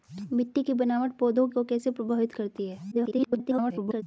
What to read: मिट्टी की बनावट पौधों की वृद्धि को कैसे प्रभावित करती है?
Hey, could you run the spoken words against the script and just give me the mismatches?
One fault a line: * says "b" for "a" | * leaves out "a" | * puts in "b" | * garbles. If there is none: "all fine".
* leaves out "की वृद्धि"
* garbles